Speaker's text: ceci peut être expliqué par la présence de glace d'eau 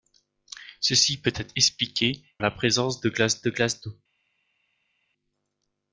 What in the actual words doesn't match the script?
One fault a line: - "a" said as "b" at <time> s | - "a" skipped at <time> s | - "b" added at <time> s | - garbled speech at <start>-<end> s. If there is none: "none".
- "par" skipped at 2.2 s
- "de glace" added at 3.4 s